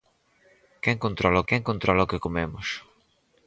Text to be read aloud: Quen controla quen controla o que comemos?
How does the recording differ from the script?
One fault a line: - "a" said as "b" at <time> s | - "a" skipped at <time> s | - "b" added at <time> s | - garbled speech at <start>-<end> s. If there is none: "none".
none